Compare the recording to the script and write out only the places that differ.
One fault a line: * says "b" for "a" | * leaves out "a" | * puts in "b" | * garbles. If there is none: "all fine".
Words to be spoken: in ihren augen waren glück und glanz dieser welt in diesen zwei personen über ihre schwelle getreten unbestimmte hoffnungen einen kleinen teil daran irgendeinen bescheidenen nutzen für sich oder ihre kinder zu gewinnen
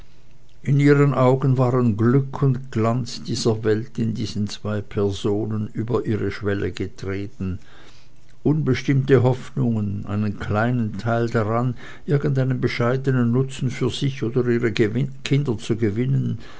all fine